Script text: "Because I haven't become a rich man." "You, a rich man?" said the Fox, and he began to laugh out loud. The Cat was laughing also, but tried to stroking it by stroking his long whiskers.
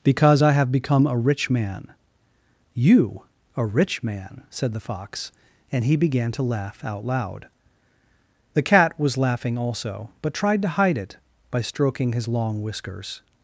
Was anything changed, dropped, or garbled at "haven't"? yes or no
yes